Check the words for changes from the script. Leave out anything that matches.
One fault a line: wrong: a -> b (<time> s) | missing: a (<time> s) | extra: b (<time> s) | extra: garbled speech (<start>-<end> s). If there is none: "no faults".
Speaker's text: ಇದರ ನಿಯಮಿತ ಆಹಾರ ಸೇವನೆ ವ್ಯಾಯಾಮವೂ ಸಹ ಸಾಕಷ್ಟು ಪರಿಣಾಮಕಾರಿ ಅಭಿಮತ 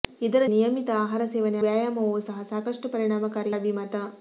no faults